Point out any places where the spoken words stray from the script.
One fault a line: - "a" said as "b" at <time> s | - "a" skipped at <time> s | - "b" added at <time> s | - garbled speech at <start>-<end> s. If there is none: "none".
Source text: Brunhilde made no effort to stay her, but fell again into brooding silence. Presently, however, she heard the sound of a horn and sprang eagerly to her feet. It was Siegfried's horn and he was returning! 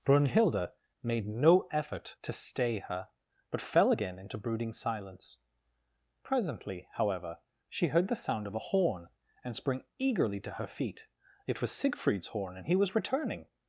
none